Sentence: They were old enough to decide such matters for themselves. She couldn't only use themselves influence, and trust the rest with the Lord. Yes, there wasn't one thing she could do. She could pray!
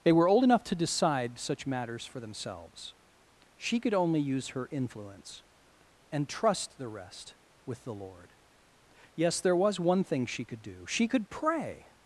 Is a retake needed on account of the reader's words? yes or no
yes